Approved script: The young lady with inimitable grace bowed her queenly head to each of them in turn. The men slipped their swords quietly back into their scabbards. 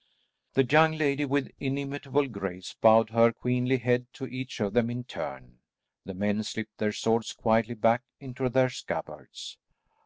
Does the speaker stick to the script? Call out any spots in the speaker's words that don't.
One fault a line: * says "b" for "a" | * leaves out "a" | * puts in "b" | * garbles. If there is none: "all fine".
all fine